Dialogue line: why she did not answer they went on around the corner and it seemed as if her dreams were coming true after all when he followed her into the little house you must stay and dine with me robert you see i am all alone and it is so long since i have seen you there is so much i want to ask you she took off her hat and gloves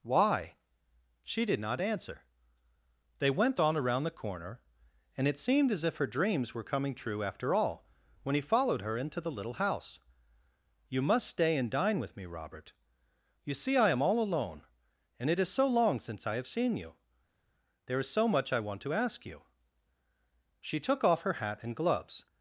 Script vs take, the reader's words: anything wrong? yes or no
no